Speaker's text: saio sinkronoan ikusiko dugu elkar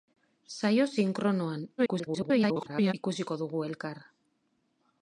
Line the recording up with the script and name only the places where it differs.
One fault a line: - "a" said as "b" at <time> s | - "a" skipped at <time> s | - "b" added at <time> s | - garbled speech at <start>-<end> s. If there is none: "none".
- garbled speech at 1.8-2.9 s